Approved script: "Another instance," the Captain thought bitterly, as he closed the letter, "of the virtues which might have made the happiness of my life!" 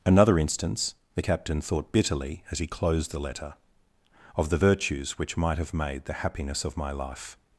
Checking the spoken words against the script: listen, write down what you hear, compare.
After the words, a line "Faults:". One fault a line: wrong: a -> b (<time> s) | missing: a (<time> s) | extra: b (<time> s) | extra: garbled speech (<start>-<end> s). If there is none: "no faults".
"Another instance," the Captain thought bitterly, as he closed the letter, "of the virtues which might have made the happiness of my life!"
Faults:
no faults